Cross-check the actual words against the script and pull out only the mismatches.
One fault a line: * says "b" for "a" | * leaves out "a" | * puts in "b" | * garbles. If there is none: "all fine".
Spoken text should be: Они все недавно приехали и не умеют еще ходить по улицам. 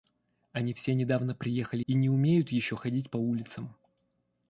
all fine